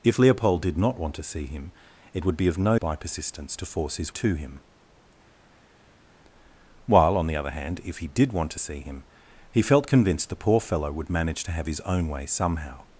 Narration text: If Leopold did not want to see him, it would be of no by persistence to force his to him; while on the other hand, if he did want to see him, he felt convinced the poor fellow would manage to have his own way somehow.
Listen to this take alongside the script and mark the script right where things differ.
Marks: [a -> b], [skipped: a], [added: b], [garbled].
If Leopold did not want to see him, it would be of no by persistence to force his to him; while on the other hand, if he did want to see him, he felt convinced the poor fellow would manage to have his own way somehow.